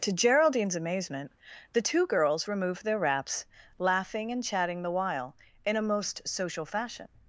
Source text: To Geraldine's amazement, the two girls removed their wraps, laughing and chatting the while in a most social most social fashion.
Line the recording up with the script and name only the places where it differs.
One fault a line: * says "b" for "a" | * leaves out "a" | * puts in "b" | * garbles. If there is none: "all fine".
* leaves out "most social"